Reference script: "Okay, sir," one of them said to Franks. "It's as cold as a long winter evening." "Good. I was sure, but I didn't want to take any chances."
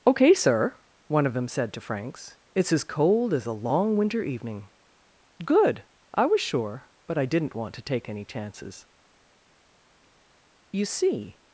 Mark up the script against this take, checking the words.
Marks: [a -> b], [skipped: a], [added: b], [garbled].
"Okay, sir," one of them said to Franks. "It's as cold as a long winter evening." "Good. I was sure, but I didn't want to take any chances." [added: You see]